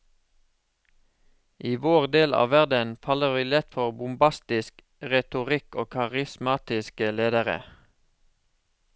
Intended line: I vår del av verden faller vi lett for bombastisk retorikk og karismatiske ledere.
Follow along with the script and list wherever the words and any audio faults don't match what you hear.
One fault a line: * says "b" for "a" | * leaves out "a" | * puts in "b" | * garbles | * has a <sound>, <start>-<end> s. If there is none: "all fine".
all fine